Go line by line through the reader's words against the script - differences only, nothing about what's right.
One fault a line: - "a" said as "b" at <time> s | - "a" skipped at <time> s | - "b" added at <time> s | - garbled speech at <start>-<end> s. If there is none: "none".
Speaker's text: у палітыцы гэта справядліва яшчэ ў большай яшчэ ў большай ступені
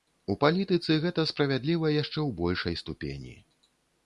- "яшчэ ў большай" skipped at 2.8 s